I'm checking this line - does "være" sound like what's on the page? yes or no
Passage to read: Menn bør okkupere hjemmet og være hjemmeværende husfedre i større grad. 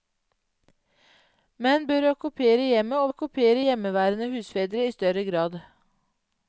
no